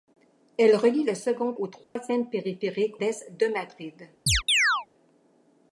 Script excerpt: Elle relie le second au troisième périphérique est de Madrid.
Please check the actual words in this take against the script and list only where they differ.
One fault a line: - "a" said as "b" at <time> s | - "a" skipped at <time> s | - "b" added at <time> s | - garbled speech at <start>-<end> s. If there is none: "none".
none